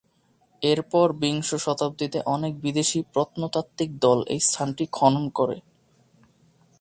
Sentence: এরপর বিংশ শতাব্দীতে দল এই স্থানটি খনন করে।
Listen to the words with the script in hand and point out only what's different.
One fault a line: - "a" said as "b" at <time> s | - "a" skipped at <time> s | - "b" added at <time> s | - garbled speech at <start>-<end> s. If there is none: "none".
- "অনেক বিদেশী প্রত্নতাত্ত্বিক" added at 2.2 s